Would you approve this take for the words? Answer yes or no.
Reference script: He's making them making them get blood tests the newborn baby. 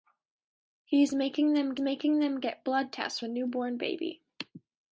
yes